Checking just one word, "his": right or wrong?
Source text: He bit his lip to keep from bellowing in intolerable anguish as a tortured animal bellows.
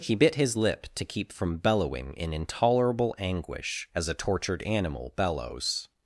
right